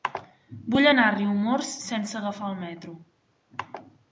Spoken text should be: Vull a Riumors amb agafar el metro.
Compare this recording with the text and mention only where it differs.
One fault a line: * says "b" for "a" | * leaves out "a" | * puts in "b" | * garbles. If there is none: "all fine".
* puts in "anar"
* says "sense" for "amb"